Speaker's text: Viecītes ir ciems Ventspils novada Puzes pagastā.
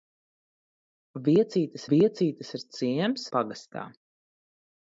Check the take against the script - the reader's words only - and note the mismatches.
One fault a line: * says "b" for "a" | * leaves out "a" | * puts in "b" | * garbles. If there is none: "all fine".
* puts in "viecītes"
* leaves out "Ventspils novada Puzes"